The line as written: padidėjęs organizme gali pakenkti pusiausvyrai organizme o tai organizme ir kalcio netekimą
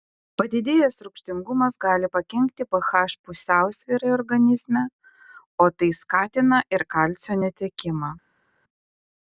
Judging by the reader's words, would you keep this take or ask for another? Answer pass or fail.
fail